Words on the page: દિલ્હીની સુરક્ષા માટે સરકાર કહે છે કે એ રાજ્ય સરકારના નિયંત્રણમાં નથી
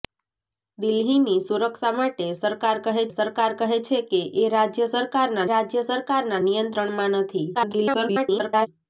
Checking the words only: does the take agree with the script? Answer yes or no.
no